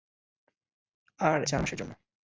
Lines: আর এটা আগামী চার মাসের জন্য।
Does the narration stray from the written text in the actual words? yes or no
yes